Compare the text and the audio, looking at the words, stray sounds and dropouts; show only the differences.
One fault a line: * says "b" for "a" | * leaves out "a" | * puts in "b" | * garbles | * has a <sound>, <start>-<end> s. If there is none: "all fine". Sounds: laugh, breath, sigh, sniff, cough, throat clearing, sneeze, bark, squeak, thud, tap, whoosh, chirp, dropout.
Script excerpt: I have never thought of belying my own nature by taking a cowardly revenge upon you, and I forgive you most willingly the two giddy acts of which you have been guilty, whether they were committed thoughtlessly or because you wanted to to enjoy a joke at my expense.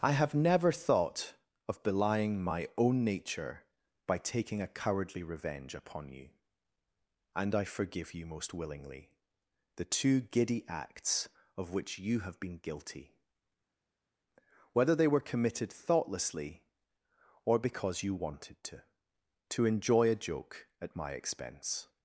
all fine